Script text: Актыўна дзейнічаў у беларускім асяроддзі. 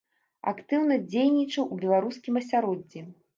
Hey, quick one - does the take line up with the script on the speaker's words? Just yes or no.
yes